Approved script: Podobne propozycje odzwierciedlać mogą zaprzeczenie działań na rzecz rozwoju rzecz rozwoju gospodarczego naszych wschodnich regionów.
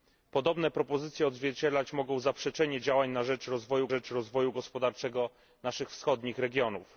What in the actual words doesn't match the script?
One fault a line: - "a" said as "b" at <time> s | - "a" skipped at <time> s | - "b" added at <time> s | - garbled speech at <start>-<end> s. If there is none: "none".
none